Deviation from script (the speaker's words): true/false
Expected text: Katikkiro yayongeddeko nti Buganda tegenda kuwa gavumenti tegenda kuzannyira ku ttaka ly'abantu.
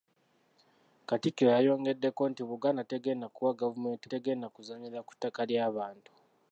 false